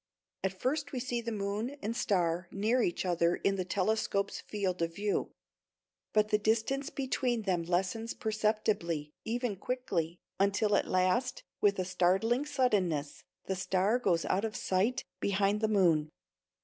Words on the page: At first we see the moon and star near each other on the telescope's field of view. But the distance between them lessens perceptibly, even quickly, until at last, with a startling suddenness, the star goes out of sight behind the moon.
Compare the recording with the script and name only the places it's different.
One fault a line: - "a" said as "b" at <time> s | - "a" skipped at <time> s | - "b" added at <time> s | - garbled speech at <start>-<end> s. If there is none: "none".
- "on" said as "in" at 3.4 s